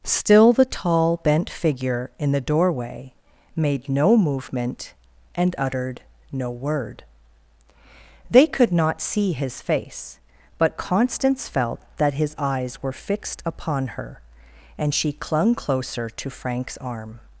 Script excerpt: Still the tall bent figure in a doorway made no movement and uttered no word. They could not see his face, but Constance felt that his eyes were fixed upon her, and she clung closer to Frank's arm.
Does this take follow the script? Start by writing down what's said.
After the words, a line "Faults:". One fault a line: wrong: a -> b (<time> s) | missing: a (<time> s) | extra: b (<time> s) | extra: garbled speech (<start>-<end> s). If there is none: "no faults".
Still the tall bent figure in the doorway made no movement and uttered no word. They could not see his face, but Constance felt that his eyes were fixed upon her, and she clung closer to Frank's arm.
Faults:
wrong: a -> the (2.3 s)